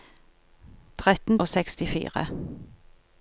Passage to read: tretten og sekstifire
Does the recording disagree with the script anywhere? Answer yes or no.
no